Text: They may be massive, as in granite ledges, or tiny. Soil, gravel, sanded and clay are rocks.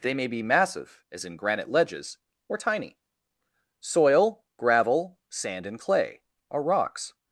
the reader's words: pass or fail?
fail